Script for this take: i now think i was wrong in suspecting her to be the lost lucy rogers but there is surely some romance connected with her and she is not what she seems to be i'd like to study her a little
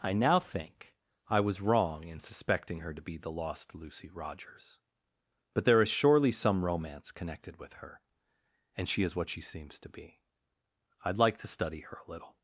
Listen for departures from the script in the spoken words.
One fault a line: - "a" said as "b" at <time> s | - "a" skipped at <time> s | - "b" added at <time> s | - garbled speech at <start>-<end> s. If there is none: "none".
- "not" skipped at 9.1 s